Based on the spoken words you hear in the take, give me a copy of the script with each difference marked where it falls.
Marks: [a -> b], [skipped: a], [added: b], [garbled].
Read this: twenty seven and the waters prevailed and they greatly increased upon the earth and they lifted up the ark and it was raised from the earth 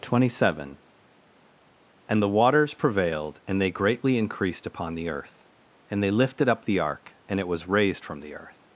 twenty seven and the waters prevailed and they greatly increased upon the earth and they lifted up the ark and it was raised from the earth